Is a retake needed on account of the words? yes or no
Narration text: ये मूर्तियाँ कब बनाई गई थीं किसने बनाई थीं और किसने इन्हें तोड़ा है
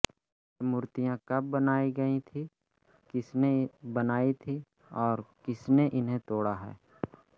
no